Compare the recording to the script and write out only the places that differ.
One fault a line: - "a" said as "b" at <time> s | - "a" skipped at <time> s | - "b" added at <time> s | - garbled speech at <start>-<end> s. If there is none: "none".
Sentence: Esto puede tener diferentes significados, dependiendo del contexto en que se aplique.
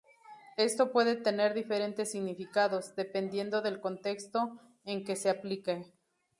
none